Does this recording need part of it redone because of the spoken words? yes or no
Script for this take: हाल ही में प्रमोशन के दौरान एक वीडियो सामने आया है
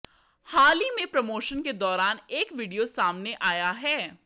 no